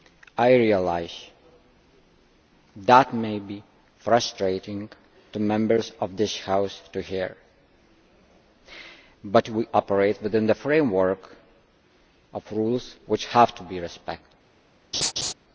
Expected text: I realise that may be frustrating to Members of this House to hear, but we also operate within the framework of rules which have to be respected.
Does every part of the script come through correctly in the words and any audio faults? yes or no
no